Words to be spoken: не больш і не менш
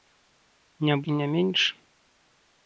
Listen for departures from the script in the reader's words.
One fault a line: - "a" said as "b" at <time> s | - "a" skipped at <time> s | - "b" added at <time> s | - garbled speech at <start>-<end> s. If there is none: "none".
- "больш" skipped at 0.9 s